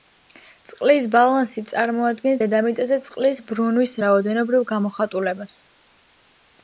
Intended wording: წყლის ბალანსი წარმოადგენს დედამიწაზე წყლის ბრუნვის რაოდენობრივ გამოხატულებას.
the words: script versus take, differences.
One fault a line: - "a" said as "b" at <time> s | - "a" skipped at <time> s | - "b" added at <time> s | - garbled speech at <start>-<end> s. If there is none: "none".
none